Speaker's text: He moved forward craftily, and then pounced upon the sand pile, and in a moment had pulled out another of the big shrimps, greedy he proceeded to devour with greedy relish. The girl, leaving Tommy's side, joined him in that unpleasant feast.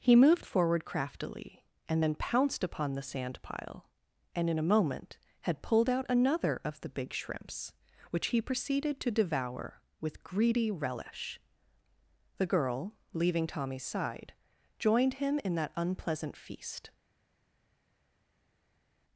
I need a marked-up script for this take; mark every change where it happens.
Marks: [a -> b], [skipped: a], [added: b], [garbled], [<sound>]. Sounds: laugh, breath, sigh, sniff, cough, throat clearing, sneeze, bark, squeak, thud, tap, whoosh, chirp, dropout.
He moved forward craftily, and then pounced upon the sand pile, and in a moment had pulled out another of the big shrimps, [greedy -> which] he proceeded to devour with greedy relish. The girl, leaving Tommy's side, joined him in that unpleasant feast.